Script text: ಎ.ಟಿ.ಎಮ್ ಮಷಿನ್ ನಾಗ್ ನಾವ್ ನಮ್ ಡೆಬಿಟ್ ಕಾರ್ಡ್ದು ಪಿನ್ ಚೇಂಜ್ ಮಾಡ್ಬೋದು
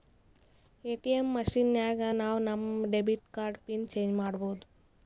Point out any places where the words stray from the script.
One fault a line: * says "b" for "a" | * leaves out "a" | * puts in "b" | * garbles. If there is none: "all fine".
all fine